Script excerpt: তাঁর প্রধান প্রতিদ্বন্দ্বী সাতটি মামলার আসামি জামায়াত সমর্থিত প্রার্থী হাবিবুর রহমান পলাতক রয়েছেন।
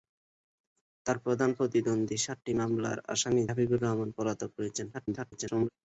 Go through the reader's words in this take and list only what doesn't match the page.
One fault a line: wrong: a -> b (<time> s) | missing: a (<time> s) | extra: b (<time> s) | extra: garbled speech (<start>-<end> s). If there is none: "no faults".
missing: জামায়াত সমর্থিত প্রার্থী (3.4 s)
extra: garbled speech (4.9-5.7 s)